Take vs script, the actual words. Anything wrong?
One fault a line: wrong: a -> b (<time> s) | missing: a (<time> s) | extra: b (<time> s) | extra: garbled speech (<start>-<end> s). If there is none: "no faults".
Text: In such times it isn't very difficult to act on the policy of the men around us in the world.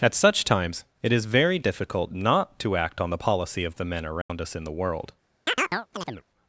wrong: In -> At (0.0 s)
wrong: isn't -> is (1.1 s)
extra: not (2.1 s)